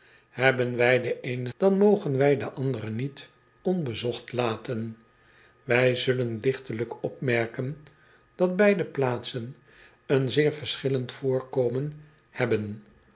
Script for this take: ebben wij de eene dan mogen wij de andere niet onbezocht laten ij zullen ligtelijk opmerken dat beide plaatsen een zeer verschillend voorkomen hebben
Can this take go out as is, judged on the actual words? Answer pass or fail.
pass